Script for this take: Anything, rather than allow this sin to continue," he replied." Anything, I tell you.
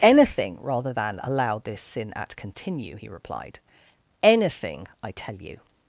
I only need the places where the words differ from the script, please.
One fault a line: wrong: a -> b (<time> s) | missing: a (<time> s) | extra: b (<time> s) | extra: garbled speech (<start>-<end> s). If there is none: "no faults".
wrong: to -> at (2.2 s)